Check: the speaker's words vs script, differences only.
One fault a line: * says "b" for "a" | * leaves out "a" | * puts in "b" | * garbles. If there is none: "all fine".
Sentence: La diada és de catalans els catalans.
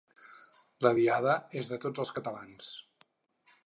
* says "tots" for "catalans"